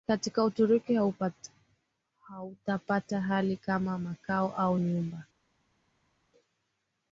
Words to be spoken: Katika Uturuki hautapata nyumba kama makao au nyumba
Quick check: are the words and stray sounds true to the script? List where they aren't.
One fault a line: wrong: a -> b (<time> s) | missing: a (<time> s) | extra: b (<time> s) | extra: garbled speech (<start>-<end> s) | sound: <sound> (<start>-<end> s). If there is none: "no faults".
wrong: nyumba -> hali (3.2 s)